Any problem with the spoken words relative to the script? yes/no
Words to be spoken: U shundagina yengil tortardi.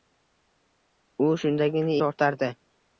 yes